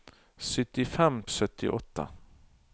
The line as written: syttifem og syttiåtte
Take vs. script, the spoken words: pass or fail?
pass